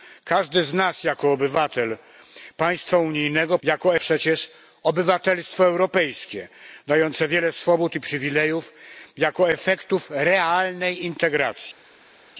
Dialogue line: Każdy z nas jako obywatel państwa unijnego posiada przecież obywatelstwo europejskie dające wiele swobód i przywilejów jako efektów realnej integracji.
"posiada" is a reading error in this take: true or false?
true